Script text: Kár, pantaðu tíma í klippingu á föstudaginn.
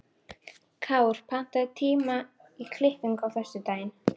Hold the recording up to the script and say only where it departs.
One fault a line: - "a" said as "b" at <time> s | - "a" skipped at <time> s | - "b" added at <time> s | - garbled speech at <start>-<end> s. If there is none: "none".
none